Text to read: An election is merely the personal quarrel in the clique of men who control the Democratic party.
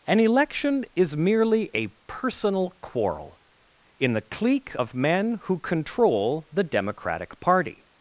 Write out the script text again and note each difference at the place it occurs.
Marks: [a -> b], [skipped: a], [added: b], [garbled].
An election is merely [the -> a] personal quarrel in the clique of men who control the Democratic party.